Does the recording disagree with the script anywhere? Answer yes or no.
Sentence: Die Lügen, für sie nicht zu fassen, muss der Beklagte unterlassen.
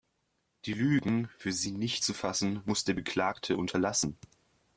no